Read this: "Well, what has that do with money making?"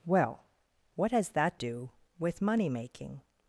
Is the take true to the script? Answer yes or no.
yes